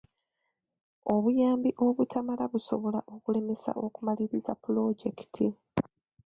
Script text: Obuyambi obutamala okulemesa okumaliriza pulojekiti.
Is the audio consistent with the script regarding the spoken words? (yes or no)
no